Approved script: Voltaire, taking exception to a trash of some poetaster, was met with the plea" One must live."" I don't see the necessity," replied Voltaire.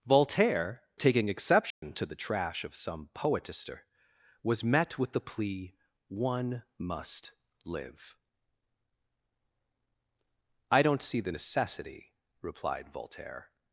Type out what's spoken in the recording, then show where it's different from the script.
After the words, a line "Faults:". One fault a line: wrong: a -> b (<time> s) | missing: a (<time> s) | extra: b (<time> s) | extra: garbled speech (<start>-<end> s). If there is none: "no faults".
Voltaire, taking exception to the trash of some poetaster, was met with the plea" One must live."" I don't see the necessity," replied Voltaire.
Faults:
wrong: a -> the (2.0 s)